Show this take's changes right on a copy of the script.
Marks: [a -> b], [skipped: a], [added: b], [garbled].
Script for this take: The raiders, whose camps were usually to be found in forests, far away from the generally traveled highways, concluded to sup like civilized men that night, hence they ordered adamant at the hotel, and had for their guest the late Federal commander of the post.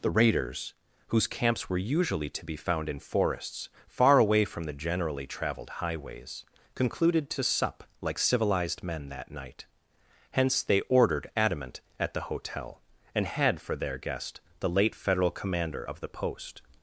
The raiders, whose camps were usually to be found in forests, far away from the generally traveled highways, concluded to sup like civilized men that night, hence they ordered adamant at the hotel, and had for their guest the late Federal commander of the post.